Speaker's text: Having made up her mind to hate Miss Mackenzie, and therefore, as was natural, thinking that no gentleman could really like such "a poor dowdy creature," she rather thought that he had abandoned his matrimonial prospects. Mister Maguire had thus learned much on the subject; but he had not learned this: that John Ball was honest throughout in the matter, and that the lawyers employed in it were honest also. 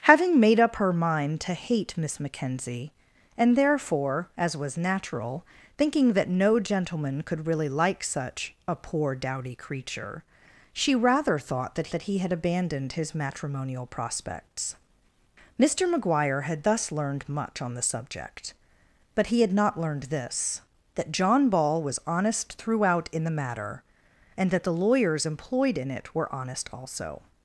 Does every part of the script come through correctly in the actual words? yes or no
no